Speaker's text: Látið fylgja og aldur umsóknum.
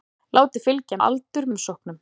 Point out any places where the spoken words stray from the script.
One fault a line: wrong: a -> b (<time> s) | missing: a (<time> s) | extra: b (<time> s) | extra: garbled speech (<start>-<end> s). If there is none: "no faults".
no faults